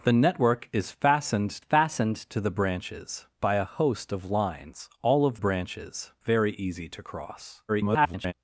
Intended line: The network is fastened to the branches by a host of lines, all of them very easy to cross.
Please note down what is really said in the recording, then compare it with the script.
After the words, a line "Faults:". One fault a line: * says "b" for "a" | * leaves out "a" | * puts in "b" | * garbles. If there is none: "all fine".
The network is fastened fastened to the branches by a host of lines, all of branches very easy to cross. [garbled]
Faults:
* puts in "fastened"
* says "branches" for "them"
* garbles